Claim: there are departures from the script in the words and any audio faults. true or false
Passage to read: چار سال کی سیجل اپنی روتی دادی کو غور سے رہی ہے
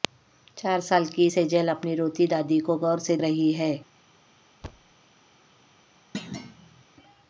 true